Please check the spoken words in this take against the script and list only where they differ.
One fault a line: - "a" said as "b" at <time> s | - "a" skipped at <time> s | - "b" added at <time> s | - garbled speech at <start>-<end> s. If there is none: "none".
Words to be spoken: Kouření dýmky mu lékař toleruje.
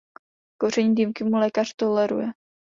none